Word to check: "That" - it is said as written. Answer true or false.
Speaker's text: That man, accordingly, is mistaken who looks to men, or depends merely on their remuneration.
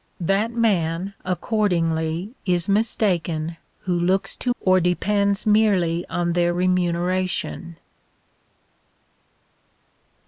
true